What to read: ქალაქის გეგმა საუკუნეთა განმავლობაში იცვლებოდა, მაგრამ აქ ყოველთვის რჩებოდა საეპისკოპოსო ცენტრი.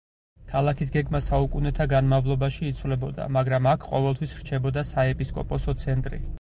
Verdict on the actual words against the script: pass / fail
pass